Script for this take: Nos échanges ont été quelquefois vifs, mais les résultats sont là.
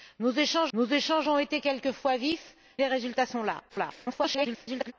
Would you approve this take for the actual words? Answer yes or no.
no